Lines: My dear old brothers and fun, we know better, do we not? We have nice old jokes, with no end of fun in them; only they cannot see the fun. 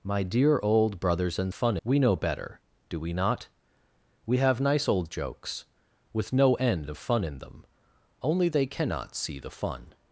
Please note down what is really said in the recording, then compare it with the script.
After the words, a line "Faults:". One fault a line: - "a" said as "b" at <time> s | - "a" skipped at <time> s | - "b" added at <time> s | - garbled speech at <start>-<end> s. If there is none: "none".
My dear old brothers and fun, we know better, do we not? We have nice old jokes, with no end of fun in them; only they cannot see the fun.
Faults:
none